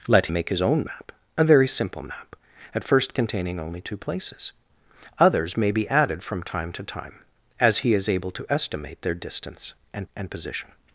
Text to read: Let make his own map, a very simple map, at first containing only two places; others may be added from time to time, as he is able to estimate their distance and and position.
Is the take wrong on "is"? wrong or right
right